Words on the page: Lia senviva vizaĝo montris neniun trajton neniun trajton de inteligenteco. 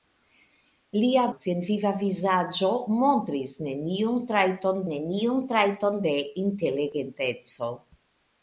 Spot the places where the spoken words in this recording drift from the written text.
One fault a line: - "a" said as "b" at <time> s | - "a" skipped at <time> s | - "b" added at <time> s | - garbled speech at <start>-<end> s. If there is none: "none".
none